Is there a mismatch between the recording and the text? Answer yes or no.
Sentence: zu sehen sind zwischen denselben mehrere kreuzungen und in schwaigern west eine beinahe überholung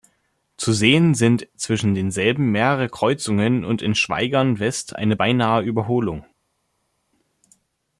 no